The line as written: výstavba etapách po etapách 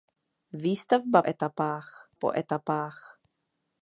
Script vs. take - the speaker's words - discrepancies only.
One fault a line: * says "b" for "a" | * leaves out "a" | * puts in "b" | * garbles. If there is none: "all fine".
all fine